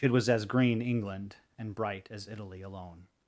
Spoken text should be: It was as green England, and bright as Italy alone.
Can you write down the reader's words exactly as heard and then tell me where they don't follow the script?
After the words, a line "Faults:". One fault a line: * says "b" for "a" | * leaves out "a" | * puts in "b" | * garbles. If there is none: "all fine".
It was as green England, and bright as Italy alone.
Faults:
all fine